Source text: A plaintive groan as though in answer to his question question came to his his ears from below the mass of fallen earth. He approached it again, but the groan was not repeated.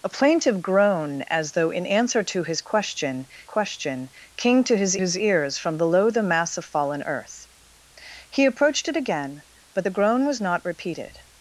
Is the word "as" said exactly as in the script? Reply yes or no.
yes